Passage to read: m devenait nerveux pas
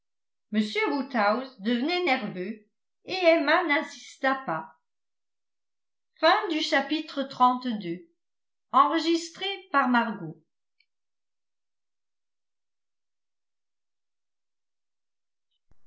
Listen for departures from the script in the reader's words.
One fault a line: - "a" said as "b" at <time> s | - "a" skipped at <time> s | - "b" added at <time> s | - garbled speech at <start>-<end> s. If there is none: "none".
- "woodhouse" added at 0.9 s
- "et emma n'insista" added at 3.0 s